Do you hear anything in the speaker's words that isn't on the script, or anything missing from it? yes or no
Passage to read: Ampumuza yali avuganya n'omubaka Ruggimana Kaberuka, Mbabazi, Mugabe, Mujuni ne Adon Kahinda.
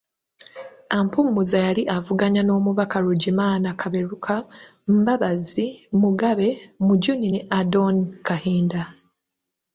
no